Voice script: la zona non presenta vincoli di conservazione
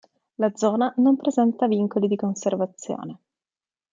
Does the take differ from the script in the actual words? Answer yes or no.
no